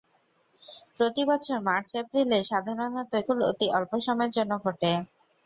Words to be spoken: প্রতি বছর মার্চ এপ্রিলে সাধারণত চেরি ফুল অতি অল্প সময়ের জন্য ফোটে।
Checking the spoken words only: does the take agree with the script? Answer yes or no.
no